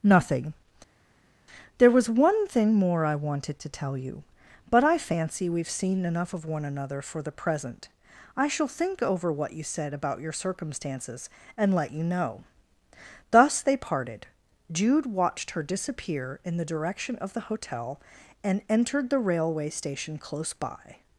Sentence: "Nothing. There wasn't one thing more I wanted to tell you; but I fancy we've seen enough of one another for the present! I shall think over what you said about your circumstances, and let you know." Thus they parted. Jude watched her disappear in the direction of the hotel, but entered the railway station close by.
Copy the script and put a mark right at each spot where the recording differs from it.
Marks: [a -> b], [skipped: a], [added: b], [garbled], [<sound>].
"Nothing. There [wasn't -> was] one thing more I wanted to tell you; but I fancy we've seen enough of one another for the present! I shall think over what you said about your circumstances, and let you know." Thus they parted. Jude watched her disappear in the direction of the hotel, [but -> and] entered the railway station close by.